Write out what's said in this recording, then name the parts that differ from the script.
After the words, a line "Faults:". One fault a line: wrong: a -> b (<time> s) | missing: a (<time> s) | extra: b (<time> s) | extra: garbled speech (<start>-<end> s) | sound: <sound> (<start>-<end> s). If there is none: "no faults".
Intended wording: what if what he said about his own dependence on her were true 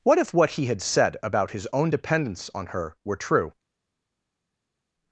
what if what he had said about his own dependence on her were true
Faults:
extra: had (0.7 s)